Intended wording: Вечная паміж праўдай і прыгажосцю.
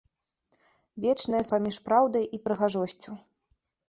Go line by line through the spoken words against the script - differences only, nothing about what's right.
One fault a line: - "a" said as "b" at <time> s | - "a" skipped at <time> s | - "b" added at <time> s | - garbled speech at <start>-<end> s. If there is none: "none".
none